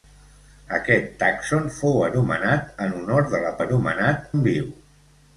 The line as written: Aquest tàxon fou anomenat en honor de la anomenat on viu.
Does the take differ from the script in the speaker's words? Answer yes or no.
no